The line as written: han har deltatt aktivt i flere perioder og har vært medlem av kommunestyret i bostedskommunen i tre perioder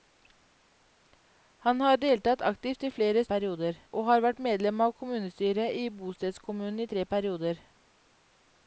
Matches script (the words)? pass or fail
pass